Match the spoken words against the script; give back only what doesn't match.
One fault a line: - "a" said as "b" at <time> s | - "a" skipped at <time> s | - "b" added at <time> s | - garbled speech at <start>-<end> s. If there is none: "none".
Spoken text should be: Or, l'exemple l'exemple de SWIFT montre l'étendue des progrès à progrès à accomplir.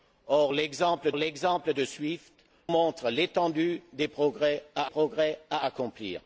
none